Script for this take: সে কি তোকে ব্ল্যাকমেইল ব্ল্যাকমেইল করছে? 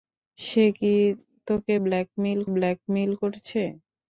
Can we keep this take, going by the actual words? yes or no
yes